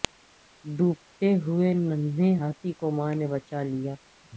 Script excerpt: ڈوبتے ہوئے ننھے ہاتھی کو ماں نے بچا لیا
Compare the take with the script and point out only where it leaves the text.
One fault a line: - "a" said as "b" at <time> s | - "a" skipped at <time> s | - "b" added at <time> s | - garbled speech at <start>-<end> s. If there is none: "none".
none